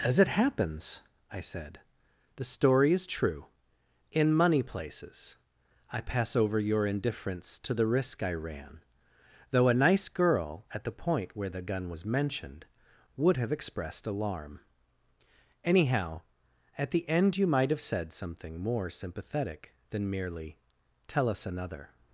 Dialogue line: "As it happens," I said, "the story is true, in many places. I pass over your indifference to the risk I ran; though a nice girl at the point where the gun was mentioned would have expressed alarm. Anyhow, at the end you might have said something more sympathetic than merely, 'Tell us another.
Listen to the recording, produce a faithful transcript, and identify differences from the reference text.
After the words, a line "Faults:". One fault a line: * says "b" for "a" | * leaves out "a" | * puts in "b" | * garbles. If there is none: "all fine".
"As it happens," I said, "the story is true, in money places. I pass over your indifference to the risk I ran; though a nice girl at the point where the gun was mentioned would have expressed alarm. Anyhow, at the end you might have said something more sympathetic than merely, 'Tell us another.
Faults:
* says "money" for "many"